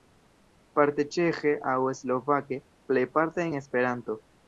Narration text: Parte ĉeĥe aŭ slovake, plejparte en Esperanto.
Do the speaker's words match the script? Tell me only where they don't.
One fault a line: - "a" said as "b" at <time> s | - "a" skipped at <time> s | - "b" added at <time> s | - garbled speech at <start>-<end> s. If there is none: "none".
none